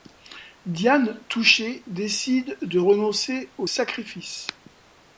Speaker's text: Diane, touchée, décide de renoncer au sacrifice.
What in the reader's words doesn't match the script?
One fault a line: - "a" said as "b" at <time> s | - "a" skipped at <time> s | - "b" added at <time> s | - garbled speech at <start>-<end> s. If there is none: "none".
none